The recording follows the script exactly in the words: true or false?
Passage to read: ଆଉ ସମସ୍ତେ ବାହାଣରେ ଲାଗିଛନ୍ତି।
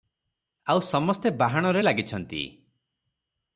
true